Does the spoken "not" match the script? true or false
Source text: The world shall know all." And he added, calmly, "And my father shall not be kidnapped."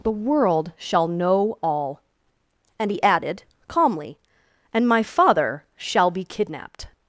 false